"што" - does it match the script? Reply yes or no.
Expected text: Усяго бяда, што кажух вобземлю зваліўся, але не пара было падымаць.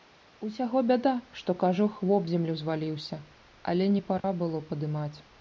yes